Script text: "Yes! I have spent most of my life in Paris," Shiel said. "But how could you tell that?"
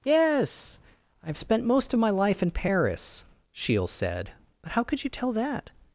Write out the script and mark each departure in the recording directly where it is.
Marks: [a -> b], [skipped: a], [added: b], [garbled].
"Yes! I have spent most of my life in Paris," Shiel said. "But how could you tell that?"